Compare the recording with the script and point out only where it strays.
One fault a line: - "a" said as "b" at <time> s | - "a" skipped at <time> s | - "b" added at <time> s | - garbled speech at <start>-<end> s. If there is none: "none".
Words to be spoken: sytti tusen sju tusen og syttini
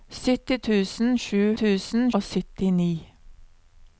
none